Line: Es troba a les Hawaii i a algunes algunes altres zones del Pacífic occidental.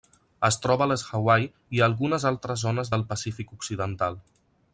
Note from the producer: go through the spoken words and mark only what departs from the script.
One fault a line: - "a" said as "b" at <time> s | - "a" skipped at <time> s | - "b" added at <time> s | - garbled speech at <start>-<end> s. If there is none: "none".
- "algunes" skipped at 2.2 s